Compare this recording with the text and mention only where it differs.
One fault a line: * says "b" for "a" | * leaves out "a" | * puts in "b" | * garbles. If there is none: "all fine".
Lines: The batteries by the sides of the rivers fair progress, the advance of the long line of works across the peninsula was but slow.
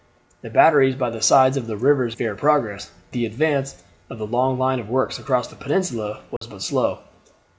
all fine